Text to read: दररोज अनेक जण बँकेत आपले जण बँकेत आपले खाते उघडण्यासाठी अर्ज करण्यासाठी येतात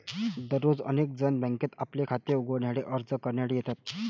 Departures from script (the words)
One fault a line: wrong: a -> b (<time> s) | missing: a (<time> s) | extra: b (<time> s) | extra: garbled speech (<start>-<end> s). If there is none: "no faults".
missing: जण बँकेत आपले (2.0 s)